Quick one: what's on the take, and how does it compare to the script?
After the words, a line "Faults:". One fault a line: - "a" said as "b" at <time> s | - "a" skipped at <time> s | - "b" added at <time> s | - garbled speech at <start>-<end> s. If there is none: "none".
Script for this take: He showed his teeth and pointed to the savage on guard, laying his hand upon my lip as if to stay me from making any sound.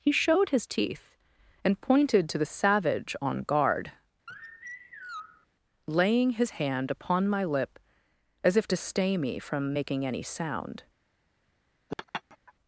He showed his teeth and pointed to the savage on guard, laying his hand upon my lip as if to stay me from making any sound.
Faults:
none